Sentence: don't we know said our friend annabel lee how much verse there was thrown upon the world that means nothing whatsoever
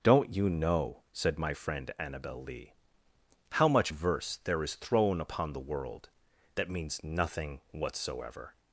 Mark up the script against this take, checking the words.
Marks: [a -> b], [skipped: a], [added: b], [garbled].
don't [we -> you] know said [our -> my] friend annabel lee how much verse there [was -> is] thrown upon the world that means nothing whatsoever